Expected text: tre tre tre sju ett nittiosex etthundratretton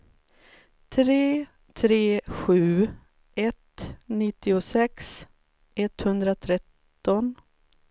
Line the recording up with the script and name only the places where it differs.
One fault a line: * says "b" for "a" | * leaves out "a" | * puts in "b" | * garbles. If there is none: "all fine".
* leaves out "tre"